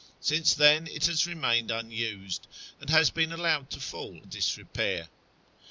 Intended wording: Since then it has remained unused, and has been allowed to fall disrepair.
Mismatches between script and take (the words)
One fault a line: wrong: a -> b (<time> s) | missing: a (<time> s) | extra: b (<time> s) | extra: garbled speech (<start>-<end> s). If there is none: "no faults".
no faults